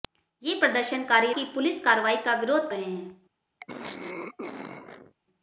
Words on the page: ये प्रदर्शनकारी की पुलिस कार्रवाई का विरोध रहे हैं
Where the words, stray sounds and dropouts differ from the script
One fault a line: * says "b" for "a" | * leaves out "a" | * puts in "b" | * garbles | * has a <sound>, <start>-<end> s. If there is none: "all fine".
* has a throat clearing, 3.6-5.2 s